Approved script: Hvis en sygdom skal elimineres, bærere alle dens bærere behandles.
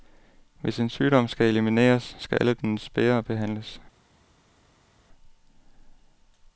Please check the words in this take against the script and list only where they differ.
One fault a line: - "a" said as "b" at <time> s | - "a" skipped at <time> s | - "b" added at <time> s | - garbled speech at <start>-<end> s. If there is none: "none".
- "bærere" said as "skal" at 2.2 s